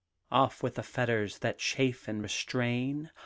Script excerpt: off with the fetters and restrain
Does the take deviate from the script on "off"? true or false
false